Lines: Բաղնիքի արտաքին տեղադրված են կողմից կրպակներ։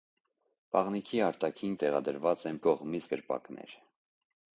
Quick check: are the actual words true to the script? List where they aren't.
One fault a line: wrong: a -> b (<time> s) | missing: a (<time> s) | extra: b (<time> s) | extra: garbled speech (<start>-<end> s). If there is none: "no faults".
no faults